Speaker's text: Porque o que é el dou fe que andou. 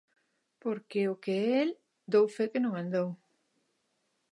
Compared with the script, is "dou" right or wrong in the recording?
right